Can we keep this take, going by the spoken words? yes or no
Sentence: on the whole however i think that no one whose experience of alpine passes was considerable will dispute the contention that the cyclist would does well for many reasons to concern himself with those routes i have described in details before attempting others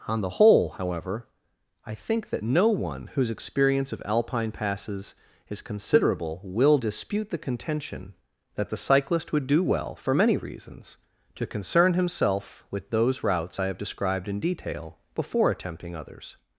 no